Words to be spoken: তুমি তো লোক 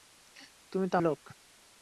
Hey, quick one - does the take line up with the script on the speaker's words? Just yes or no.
yes